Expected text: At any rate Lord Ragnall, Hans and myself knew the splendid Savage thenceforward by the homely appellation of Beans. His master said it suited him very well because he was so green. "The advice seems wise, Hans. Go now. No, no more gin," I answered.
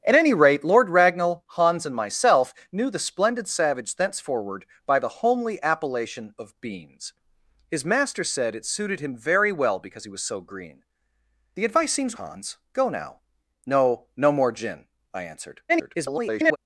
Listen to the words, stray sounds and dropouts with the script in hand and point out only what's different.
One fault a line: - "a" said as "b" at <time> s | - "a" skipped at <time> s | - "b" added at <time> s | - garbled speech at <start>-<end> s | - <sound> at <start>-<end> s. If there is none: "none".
- "wise" skipped at 12.2 s
- garbled speech at 15.7-16.6 s